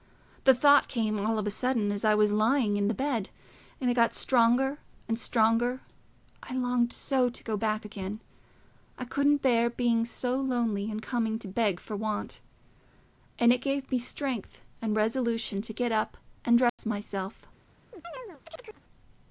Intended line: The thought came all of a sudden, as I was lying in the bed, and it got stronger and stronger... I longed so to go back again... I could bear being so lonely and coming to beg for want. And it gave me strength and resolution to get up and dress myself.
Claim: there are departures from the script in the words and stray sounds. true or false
true